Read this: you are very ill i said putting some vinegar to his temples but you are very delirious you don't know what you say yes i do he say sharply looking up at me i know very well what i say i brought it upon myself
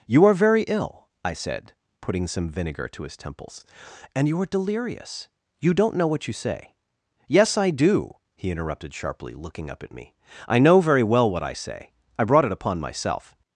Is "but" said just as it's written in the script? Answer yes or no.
no